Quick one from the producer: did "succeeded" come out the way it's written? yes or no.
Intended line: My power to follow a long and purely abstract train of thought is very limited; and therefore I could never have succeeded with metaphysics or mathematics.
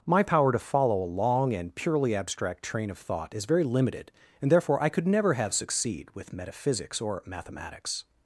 no